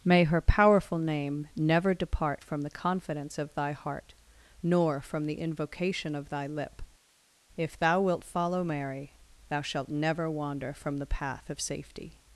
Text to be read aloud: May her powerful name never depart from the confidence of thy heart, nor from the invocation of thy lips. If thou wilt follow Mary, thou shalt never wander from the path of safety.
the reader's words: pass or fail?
fail